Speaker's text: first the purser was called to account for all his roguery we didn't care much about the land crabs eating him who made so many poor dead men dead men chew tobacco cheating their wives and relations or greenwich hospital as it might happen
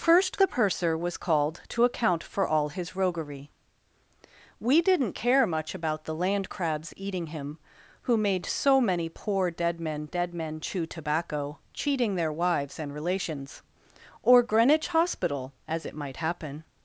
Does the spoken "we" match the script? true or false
true